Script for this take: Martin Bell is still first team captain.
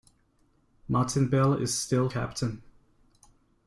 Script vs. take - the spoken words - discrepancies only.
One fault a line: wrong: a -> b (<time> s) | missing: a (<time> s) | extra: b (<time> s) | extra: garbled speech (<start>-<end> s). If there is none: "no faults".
missing: first team (2.1 s)